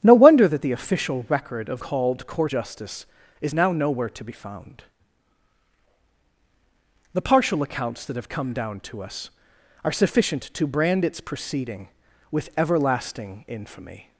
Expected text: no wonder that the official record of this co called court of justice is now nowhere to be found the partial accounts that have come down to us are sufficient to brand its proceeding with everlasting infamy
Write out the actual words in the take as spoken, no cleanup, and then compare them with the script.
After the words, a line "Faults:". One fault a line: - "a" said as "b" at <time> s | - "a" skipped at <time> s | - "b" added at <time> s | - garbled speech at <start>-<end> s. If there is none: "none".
no wonder that the official record of called court justice is now nowhere to be found the partial accounts that have come down to us are sufficient to brand its proceeding with everlasting infamy
Faults:
- "this co" skipped at 1.8 s
- "of" skipped at 2.5 s